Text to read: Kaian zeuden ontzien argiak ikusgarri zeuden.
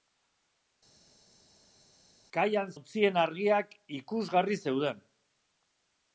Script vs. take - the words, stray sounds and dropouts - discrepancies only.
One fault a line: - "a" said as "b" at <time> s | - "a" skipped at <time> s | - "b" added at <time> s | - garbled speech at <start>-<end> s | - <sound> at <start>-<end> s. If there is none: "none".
- "zeuden" skipped at 2.7 s